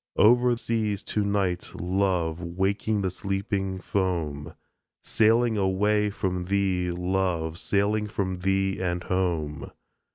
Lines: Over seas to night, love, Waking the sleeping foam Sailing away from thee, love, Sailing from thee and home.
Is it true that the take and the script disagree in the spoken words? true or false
false